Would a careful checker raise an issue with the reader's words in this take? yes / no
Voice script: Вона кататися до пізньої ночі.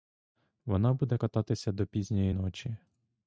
yes